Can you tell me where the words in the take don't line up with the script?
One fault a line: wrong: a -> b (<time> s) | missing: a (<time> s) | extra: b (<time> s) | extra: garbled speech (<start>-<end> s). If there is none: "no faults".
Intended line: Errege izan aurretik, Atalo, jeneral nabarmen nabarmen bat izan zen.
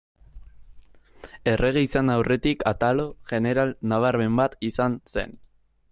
missing: nabarmen (4.4 s)